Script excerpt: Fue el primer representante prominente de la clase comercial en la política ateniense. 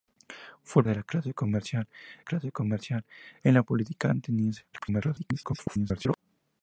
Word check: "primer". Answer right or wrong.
wrong